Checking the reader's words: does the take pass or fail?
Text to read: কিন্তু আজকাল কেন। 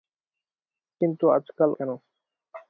pass